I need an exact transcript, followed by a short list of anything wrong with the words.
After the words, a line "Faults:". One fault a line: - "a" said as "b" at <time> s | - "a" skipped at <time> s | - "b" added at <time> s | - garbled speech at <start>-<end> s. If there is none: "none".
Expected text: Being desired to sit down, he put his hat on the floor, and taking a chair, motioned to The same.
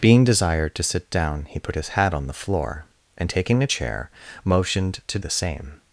Being desired to sit down, he put his hat on the floor, and taking a chair, motioned to The same.
Faults:
none